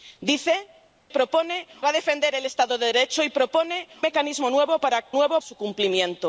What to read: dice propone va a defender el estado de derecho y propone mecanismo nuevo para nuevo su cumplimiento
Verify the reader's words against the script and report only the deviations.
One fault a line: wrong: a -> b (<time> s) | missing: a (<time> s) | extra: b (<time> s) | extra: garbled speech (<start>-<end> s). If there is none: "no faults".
no faults